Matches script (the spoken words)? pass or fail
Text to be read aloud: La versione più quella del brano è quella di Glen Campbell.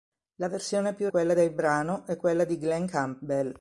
pass